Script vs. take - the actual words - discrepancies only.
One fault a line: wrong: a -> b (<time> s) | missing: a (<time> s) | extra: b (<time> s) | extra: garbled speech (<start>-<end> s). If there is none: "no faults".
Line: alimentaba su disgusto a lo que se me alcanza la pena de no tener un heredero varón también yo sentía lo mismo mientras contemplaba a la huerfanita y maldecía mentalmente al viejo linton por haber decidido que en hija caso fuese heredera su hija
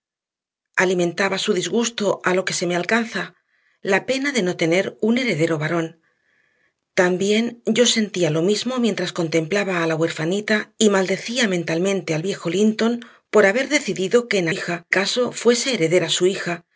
no faults